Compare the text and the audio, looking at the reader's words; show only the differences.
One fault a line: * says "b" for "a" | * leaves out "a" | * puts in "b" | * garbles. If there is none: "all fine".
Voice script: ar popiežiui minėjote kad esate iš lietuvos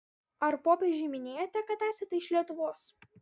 all fine